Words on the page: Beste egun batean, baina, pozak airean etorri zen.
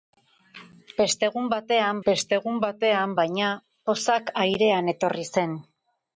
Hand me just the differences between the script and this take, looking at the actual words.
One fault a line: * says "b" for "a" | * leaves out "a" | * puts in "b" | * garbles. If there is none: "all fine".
* puts in "beste egun batean"